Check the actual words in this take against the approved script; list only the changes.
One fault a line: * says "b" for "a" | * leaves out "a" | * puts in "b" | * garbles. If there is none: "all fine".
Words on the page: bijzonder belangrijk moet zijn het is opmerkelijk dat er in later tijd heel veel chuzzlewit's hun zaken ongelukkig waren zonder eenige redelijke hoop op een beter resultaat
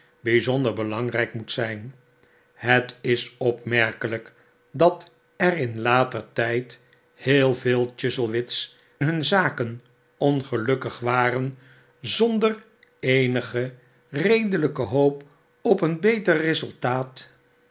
all fine